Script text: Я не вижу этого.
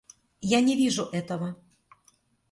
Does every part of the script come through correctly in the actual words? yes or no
yes